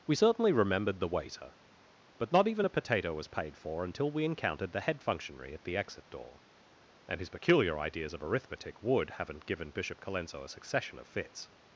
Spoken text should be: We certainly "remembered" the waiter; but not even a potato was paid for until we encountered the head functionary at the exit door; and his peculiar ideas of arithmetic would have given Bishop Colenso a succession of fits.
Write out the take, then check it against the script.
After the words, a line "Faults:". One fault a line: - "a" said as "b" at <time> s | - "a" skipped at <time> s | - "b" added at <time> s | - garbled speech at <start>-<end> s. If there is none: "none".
We certainly "remembered" the waiter; but not even a potato was paid for until we encountered the head functionary at the exit door; and his peculiar ideas of arithmetic would haven't given Bishop Colenso a succession of fits.
Faults:
- "have" said as "haven't" at 9.1 s